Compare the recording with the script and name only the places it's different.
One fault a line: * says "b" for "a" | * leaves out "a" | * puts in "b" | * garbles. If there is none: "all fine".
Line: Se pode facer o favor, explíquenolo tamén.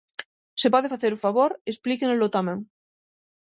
all fine